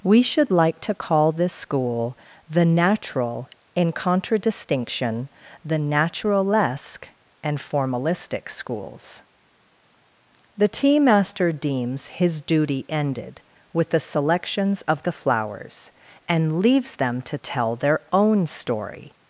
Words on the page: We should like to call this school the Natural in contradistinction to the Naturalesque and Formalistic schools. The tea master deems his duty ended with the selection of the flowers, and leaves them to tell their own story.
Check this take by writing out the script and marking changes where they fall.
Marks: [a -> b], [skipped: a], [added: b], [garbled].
We should like to call this school the Natural in contradistinction [skipped: to] the Naturalesque and Formalistic schools. The tea master deems his duty ended with the [selection -> selections] of the flowers, and leaves them to tell their own story.